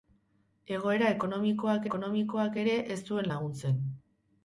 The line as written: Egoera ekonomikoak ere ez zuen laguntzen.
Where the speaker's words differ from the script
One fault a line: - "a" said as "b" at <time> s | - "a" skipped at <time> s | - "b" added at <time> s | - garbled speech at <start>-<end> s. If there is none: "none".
- "ekonomikoak" added at 1.9 s